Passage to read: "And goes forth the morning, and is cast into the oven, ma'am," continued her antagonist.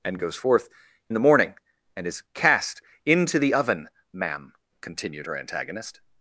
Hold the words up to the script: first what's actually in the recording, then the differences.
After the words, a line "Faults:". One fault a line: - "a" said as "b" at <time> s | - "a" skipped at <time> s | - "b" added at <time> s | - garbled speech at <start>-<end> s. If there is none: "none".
"And goes forth the morning, and is cast into the oven, ma'am," continued her antagonist.
Faults:
none